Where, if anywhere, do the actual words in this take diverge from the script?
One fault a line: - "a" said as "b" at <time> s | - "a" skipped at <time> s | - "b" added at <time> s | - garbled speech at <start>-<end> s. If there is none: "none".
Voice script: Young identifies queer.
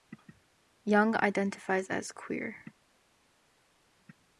- "as" added at 1.9 s